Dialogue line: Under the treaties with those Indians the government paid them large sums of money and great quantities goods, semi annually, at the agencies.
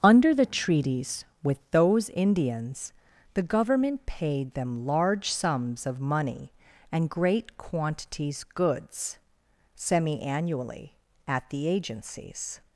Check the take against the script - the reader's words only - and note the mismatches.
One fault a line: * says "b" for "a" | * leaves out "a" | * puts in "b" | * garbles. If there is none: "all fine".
all fine